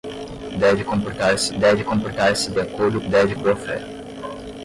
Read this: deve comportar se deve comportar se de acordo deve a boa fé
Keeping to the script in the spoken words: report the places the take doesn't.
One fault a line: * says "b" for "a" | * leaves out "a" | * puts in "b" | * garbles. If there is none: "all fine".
all fine